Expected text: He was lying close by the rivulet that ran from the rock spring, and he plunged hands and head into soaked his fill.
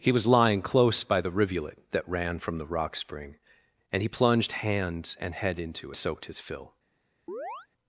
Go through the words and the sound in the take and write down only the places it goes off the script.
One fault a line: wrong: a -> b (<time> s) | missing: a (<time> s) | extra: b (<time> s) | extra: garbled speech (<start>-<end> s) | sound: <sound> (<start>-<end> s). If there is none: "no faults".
sound: chirp (7.3-7.7 s)